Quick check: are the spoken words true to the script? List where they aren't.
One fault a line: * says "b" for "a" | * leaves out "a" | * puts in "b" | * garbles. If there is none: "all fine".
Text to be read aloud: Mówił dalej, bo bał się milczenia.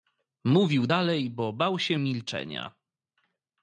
all fine